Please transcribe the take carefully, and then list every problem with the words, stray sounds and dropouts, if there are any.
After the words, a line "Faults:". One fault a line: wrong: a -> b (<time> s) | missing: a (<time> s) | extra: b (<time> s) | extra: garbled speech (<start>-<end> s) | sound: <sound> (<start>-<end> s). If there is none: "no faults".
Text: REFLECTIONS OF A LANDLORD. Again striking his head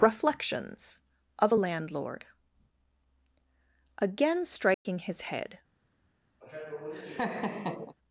REFLECTIONS OF A LANDLORD. Again striking his head
Faults:
sound: dropout (4.7-4.9 s)
sound: laugh (6.4-8.0 s)